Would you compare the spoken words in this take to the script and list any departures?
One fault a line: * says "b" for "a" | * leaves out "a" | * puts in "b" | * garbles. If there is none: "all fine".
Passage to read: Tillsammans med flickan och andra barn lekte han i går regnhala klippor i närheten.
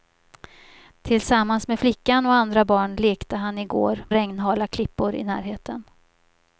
all fine